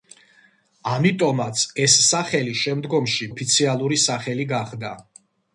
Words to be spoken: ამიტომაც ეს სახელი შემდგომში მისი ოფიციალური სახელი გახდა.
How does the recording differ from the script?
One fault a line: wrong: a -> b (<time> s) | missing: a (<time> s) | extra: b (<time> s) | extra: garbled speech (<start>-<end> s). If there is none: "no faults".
missing: მისი (3.3 s)